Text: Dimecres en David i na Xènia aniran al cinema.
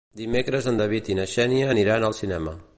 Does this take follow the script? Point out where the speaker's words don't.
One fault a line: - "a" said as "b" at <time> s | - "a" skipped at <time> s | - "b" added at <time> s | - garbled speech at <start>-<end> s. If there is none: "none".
none